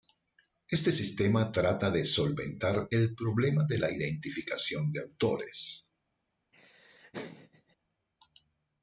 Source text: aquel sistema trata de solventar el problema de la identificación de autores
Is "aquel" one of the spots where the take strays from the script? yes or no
yes